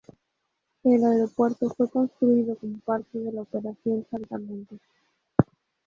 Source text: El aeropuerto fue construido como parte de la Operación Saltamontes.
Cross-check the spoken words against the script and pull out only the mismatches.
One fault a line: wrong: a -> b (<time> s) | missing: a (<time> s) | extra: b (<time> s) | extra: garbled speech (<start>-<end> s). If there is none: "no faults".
no faults